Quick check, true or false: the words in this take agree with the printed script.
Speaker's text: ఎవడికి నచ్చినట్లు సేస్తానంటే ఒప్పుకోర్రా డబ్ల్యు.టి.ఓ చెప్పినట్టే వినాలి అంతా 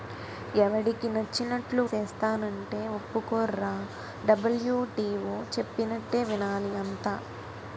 true